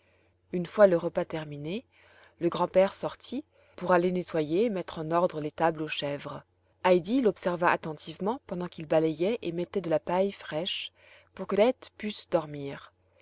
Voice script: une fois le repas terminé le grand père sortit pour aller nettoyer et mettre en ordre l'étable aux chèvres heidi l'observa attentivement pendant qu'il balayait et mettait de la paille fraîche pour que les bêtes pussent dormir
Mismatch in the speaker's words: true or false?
true